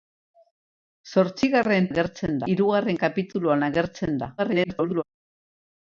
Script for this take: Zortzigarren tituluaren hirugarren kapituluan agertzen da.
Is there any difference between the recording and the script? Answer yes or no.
yes